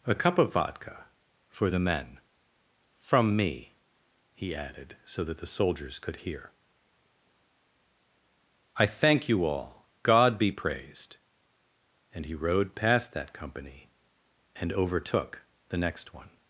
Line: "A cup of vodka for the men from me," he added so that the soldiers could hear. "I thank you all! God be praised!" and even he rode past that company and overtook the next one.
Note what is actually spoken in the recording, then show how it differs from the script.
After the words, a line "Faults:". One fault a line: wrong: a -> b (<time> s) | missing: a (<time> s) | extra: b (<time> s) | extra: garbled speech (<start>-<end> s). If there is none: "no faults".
"A cup of vodka for the men from me," he added so that the soldiers could hear. "I thank you all! God be praised!" and he rode past that company and overtook the next one.
Faults:
missing: even (12.3 s)